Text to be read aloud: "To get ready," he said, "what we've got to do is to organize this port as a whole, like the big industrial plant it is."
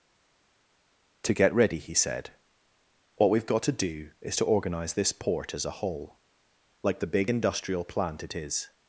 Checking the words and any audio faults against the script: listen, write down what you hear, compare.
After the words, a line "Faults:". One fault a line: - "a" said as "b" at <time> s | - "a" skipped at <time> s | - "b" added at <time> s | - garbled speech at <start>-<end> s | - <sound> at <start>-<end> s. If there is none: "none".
"To get ready," he said, "what we've got to do is to organize this port as a whole, like the big industrial plant it is."
Faults:
none